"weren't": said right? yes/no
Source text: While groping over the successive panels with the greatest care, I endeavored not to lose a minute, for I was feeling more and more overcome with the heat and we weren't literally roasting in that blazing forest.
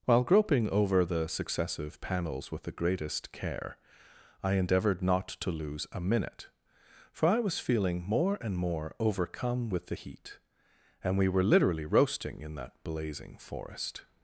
no